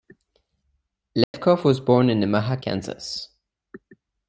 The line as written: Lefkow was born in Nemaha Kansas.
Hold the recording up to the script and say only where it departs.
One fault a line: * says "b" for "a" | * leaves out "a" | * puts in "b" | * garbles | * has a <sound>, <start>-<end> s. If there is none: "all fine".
* has a dropout, 1.2-1.3 s